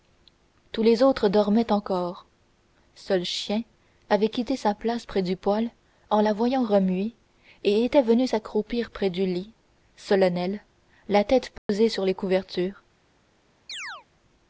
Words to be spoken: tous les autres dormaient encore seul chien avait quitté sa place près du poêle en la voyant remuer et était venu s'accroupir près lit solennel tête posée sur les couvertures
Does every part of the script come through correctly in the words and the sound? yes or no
no